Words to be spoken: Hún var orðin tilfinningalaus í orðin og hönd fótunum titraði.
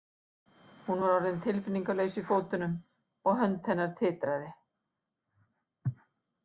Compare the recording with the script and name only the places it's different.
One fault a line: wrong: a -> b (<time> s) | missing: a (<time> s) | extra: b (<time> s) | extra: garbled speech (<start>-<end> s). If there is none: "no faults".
wrong: orðin -> fótunum (2.3 s)
wrong: fótunum -> hennar (3.7 s)